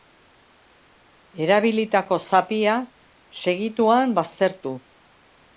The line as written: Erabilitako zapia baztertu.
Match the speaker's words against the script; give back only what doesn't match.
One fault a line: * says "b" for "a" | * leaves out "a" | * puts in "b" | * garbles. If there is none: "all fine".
* puts in "segituan"